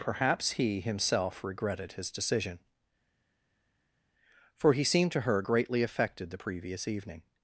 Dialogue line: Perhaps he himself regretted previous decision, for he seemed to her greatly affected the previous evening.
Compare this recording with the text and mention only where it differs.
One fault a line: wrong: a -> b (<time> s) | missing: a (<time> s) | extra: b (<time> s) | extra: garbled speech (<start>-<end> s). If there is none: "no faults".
wrong: previous -> his (1.9 s)